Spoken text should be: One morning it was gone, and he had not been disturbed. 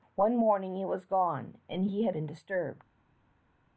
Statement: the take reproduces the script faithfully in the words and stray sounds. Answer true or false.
false